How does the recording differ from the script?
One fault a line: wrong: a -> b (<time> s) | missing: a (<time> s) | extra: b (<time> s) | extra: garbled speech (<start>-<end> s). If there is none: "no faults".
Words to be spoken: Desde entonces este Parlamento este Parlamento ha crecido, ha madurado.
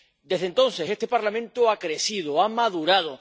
missing: este Parlamento (1.7 s)